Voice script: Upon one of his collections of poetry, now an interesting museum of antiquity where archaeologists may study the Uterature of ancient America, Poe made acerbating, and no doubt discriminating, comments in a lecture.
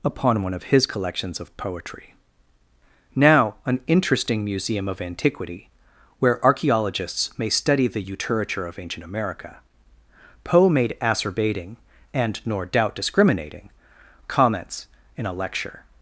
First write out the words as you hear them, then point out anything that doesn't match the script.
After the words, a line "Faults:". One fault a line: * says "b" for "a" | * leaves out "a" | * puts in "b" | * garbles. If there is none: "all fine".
Upon one of his collections of poetry, now an interesting museum of antiquity where archaeologists may study the Uterature of ancient America, Poe made acerbating, and nor doubt discriminating, comments in a lecture.
Faults:
* says "nor" for "no"